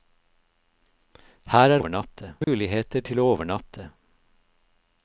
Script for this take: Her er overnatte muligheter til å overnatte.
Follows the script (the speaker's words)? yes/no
yes